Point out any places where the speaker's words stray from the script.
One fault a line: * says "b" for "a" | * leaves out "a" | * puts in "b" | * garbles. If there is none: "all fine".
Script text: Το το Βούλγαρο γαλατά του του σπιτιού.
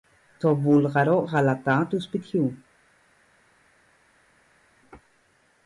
* leaves out "το"
* leaves out "του"